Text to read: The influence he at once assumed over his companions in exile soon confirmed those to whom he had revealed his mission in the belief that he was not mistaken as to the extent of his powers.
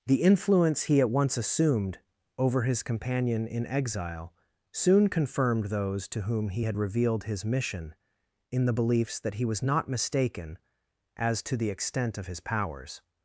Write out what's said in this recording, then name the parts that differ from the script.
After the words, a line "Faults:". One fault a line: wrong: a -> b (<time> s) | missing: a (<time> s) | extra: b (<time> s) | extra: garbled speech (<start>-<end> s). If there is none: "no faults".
The influence he at once assumed over his companion in exile soon confirmed those to whom he had revealed his mission in the beliefs that he was not mistaken as to the extent of his powers.
Faults:
wrong: companions -> companion (2.8 s)
wrong: belief -> beliefs (8.7 s)